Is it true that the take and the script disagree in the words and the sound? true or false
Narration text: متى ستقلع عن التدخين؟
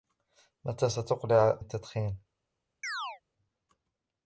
true